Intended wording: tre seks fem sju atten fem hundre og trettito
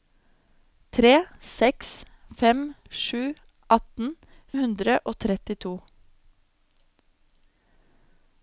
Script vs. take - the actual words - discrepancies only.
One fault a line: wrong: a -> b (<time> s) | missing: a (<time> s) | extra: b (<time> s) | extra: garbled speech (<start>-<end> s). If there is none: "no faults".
missing: fem (4.1 s)